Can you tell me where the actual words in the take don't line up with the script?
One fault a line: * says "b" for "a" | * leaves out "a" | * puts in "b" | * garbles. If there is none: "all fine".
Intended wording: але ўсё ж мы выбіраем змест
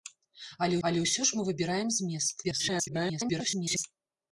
* puts in "але"
* garbles